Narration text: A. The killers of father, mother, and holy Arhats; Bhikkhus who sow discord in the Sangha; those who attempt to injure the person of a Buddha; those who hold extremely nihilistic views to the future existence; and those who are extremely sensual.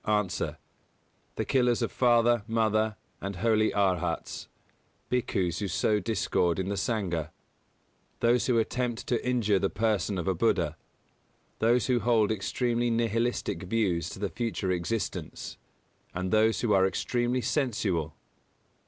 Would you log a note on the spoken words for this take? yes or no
no